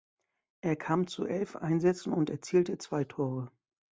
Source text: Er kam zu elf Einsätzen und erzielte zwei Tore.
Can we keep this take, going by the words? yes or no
yes